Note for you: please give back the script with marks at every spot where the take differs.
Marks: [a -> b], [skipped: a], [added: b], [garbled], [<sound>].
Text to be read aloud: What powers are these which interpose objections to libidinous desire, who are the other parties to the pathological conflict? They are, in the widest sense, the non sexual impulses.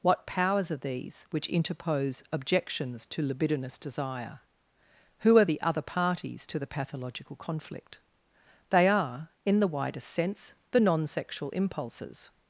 What powers are these which interpose objections to libidinous desire, who are the other parties to the pathological conflict? They are, in the widest sense, the non sexual impulses.